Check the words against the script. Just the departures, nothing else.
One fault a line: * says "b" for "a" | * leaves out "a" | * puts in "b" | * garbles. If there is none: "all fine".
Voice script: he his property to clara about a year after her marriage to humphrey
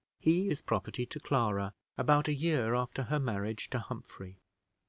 all fine